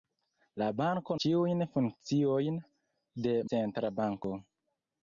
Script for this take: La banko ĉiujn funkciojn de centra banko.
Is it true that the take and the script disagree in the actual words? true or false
false